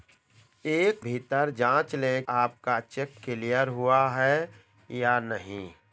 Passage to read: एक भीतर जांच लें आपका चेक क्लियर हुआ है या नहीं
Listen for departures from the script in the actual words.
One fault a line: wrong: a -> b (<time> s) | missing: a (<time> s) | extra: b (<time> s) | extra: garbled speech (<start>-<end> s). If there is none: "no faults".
no faults